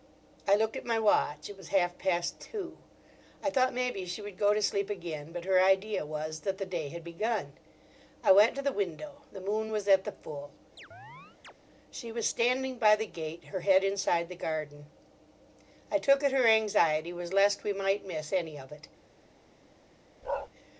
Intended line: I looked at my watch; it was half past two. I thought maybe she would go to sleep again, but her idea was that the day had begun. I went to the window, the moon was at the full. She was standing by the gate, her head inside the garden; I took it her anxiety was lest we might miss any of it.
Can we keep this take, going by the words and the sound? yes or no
no